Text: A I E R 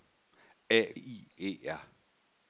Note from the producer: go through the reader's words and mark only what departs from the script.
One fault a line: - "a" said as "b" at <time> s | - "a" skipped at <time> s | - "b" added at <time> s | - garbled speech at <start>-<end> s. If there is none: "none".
none